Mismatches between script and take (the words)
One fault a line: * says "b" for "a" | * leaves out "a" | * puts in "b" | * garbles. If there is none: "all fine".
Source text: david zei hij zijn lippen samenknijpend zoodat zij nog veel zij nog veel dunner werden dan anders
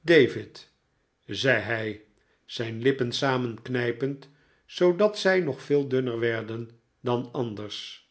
* leaves out "zij nog veel"